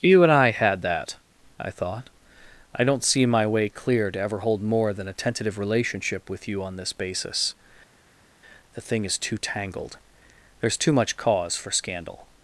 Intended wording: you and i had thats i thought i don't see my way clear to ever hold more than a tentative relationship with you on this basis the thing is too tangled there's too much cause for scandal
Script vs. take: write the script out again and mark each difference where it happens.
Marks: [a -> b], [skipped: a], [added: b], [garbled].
you and i had [thats -> that] i thought i don't see my way clear to ever hold more than a tentative relationship with you on this basis the thing is too tangled there's too much cause for scandal